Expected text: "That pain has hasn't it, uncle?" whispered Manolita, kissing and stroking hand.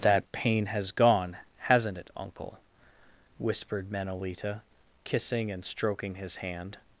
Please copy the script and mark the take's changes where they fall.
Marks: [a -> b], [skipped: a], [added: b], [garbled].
"That pain has [added: gone] hasn't it, uncle?" whispered Manolita, kissing and stroking [added: his] hand.